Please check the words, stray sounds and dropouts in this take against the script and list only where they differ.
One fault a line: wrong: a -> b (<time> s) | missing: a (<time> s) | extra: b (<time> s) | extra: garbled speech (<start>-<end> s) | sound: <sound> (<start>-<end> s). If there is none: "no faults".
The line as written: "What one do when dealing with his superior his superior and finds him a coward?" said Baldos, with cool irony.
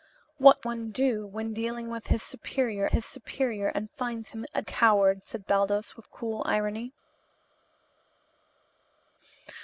no faults